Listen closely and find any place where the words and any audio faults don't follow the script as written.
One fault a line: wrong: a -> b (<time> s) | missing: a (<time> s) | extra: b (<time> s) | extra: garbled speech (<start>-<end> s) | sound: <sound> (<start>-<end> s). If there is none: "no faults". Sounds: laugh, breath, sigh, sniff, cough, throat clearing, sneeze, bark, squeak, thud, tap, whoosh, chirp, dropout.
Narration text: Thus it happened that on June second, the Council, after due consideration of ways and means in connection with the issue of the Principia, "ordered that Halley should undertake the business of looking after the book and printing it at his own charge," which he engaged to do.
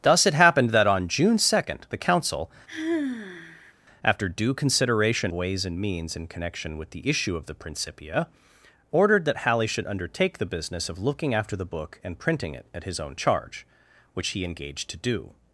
sound: sigh (2.7-3.7 s)
missing: of (5.3 s)